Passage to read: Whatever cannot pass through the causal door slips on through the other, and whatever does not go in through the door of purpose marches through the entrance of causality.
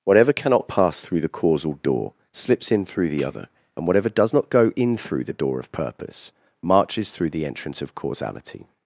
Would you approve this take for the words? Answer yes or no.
no